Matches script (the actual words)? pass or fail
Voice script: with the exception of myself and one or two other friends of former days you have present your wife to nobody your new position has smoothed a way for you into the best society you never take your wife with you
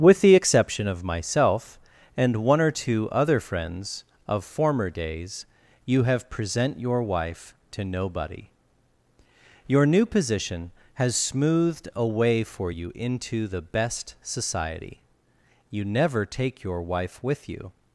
pass